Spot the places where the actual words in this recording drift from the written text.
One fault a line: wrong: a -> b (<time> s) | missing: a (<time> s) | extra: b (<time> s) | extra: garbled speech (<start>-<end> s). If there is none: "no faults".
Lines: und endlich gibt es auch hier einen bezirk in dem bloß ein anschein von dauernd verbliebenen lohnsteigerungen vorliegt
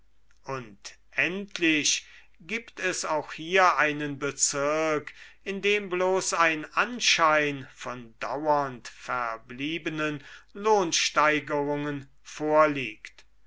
no faults